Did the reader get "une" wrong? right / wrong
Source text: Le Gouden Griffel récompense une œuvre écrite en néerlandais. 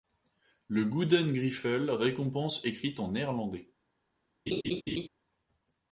wrong